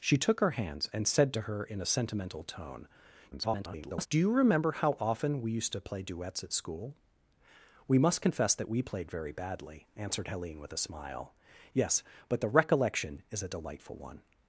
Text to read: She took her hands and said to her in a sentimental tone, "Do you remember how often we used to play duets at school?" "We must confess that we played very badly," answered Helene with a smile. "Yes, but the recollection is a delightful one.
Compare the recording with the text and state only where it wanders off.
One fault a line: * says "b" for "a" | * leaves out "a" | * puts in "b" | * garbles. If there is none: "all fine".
* garbles